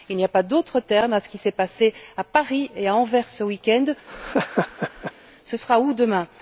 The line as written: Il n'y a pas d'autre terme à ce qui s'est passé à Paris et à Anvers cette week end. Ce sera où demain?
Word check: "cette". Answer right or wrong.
wrong